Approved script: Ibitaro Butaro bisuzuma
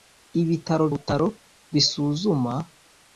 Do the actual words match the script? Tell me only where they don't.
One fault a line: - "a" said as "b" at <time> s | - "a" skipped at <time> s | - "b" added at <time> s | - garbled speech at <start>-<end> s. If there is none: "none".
none